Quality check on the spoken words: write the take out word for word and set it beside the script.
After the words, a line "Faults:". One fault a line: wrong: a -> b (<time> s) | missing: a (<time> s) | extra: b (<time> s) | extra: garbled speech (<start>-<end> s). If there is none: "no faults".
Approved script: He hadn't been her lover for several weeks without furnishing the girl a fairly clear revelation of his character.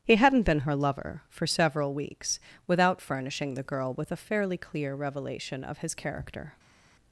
He hadn't been her lover for several weeks without furnishing the girl with a fairly clear revelation of his character.
Faults:
extra: with (3.9 s)